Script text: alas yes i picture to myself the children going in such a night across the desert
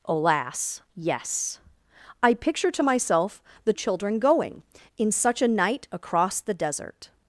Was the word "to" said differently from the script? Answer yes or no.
no